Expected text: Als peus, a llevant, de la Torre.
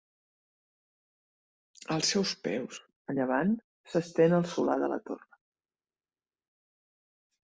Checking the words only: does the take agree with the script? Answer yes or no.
no